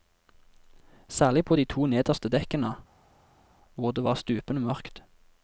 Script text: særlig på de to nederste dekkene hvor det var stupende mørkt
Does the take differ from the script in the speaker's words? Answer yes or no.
no